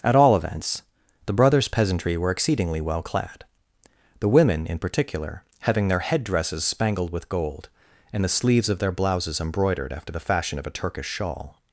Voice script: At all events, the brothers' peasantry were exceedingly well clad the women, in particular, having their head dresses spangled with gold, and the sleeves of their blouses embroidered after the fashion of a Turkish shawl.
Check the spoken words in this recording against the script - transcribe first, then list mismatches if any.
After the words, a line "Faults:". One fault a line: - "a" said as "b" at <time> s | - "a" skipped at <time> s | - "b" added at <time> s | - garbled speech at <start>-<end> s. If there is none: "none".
At all events, the brothers' peasantry were exceedingly well clad the women, in particular, having their head dresses spangled with gold, and the sleeves of their blouses embroidered after the fashion of a Turkish shawl.
Faults:
none